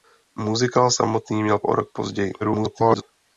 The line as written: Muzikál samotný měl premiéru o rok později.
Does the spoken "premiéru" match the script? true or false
false